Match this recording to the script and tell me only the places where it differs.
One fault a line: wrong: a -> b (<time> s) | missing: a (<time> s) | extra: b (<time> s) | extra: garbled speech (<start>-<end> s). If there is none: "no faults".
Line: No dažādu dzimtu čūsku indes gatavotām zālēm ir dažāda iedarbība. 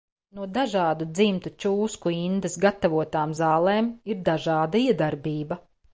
no faults